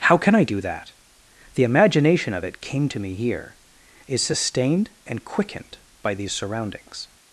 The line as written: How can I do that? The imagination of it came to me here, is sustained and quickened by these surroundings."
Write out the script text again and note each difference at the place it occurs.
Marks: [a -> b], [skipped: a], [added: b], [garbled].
How can I do that? The imagination of it came to me here, is sustained and quickened by these surroundings."